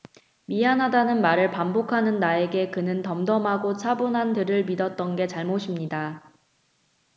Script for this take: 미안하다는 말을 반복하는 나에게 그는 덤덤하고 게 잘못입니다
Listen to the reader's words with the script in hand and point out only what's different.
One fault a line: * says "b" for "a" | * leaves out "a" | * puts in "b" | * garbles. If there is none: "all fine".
* puts in "차분한 들을 믿었던"